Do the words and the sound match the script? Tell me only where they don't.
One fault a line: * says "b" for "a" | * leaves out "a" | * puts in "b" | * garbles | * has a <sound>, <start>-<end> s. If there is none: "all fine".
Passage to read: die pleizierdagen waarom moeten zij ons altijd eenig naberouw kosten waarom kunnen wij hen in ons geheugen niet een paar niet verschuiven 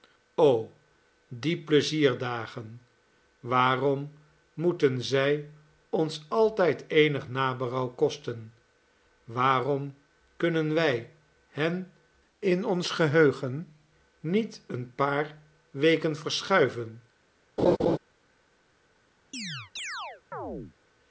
* says "weken" for "niet"
* has a laugh, 17.6-18.0 s
* has a chirp, 19.3-20.8 s